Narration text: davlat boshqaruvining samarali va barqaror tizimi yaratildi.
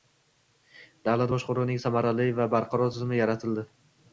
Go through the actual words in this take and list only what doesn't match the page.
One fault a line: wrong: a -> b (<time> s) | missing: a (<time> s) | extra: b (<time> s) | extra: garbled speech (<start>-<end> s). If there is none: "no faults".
no faults